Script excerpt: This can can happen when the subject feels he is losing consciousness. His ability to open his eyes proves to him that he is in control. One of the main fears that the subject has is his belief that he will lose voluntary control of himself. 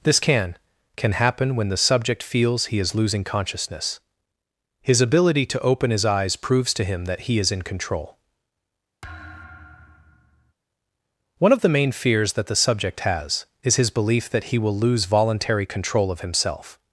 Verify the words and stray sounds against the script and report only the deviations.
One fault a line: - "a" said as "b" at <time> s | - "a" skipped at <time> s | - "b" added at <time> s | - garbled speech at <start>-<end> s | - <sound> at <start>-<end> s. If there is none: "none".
- thud at 9.0-10.5 s